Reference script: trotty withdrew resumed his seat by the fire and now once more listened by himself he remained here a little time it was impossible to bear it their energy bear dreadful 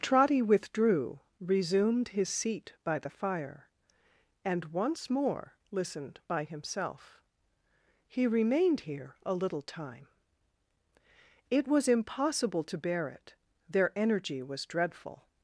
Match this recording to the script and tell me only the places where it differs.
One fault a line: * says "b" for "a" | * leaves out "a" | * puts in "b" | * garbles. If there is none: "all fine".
* leaves out "now"
* says "was" for "bear"